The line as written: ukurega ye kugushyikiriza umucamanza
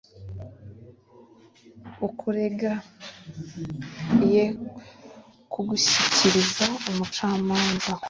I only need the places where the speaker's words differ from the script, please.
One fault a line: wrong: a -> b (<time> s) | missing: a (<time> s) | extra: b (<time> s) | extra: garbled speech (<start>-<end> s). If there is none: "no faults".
no faults